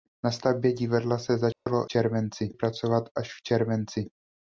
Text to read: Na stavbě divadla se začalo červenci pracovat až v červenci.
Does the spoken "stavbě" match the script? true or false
true